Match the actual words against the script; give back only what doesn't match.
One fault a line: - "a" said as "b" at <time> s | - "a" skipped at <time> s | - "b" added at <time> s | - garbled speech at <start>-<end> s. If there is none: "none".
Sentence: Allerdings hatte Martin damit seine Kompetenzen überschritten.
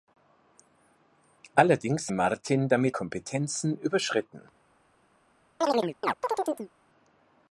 - "hatte" skipped at 2.1 s
- "seine" skipped at 3.0 s